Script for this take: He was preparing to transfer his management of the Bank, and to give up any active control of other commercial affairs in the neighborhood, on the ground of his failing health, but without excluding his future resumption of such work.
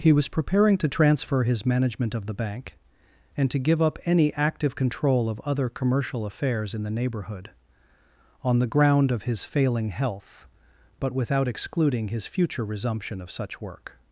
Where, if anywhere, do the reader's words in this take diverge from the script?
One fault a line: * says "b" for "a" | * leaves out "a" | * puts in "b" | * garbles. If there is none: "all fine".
all fine